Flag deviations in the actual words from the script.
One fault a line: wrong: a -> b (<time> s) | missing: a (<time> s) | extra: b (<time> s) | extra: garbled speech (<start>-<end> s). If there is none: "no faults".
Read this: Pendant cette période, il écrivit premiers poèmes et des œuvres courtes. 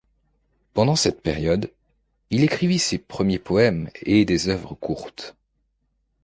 extra: ses (2.8 s)